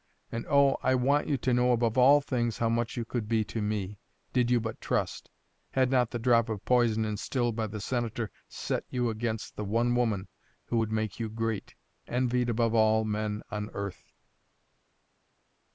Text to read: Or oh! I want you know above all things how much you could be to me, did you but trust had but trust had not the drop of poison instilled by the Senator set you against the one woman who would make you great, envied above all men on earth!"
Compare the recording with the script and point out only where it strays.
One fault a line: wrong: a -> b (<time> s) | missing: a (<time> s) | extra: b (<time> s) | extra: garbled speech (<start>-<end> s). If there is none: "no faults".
wrong: Or -> And (0.3 s)
extra: to (1.4 s)
missing: but trust had (5.9 s)